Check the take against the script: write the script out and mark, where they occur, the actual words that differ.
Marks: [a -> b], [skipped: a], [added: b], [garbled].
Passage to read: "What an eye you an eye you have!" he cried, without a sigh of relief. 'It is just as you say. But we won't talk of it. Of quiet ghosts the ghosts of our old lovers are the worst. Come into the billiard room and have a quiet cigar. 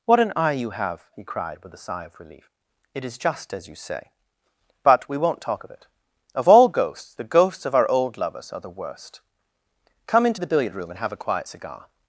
"What an eye you [skipped: an eye you] have!" he cried, [without -> with] a sigh of relief. 'It is just as you say. But we won't talk of it. Of [quiet -> all] ghosts the ghosts of our old lovers are the worst. Come into the billiard room and have a quiet cigar.